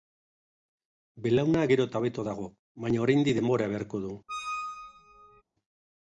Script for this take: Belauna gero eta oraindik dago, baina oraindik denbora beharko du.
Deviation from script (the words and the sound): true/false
true